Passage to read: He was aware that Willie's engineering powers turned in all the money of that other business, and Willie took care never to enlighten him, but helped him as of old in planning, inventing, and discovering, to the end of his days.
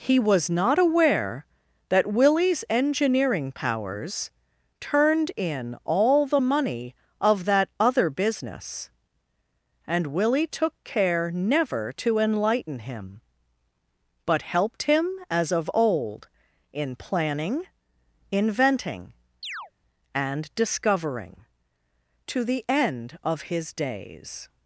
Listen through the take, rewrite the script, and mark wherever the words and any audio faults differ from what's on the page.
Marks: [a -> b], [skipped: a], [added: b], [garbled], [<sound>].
He was [added: not] aware that Willie's engineering powers turned in all the money of that other business, and Willie took care never to enlighten him, but helped him as of old in planning, inventing, [chirp] and discovering, to the end of his days.